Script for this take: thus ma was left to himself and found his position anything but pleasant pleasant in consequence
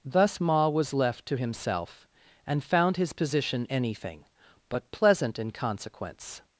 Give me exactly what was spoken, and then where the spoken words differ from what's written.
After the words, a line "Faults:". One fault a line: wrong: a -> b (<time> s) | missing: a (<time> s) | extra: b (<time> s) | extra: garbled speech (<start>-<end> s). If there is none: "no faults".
thus ma was left to himself and found his position anything but pleasant in consequence
Faults:
missing: pleasant (5.4 s)